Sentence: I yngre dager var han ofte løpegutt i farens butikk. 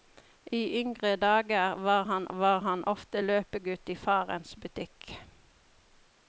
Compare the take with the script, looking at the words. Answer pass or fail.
fail